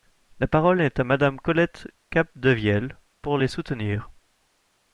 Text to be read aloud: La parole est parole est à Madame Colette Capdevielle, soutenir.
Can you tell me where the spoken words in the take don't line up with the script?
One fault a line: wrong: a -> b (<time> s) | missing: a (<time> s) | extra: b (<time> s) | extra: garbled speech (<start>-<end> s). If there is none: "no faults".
missing: parole est (1.0 s)
extra: pour les (3.2 s)